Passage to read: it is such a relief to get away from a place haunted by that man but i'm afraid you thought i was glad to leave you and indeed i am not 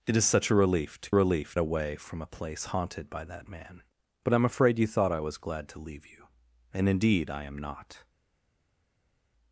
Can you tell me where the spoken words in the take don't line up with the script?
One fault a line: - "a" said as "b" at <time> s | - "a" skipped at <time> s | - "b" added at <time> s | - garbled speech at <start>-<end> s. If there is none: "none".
- "get" said as "relief" at 1.1 s